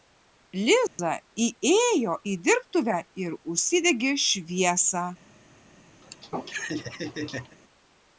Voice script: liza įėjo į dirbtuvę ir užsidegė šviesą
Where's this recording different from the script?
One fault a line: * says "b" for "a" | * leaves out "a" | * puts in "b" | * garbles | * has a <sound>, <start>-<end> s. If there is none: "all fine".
* has a dropout, 0.9-1.0 s
* has a laugh, 6.0-7.6 s